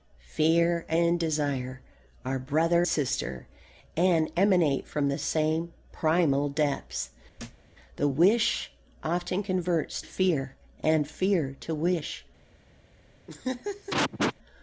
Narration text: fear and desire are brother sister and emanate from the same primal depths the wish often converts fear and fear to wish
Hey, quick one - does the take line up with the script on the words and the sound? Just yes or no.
no